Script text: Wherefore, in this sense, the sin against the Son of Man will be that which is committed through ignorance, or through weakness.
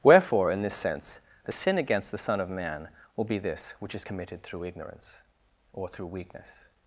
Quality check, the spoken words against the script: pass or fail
fail